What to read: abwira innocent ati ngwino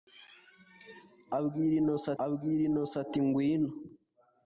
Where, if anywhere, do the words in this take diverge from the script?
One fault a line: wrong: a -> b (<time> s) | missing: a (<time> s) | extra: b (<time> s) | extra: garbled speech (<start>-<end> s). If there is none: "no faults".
extra: abwira innocent (2.2 s)